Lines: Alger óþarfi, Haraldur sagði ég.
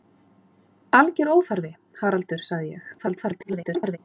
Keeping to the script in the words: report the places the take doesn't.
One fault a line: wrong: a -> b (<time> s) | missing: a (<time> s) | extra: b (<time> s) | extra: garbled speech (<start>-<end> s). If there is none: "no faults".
extra: garbled speech (3.0-4.0 s)